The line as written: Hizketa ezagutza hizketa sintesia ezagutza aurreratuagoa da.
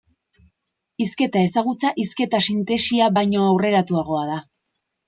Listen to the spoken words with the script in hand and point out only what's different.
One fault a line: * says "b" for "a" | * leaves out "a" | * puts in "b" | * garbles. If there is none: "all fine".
* says "baino" for "ezagutza"